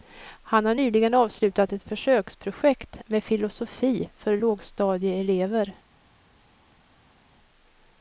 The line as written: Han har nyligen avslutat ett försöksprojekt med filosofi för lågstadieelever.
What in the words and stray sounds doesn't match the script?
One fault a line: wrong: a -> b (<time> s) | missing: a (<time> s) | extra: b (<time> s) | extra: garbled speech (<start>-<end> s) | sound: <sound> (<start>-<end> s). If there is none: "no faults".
no faults